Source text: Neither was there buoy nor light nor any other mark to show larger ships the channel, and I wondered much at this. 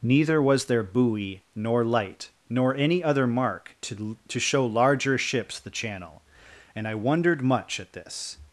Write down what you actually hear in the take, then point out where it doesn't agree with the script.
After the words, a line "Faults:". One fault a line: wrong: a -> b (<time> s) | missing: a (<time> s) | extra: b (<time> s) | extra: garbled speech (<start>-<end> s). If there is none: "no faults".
Neither was there buoy nor light nor any other mark to to show larger ships the channel, and I wondered much at this.
Faults:
extra: to (4.3 s)